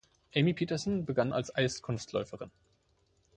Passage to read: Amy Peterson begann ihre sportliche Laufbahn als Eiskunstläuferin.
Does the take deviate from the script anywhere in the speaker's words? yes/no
yes